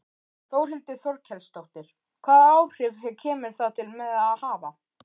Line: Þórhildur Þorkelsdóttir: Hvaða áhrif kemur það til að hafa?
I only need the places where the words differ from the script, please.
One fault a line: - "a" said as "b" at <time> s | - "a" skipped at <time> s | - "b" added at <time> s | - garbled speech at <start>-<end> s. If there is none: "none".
- "með" added at 4.0 s